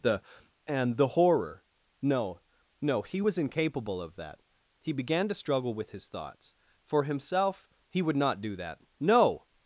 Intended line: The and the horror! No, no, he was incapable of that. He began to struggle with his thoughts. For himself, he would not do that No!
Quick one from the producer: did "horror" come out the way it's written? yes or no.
yes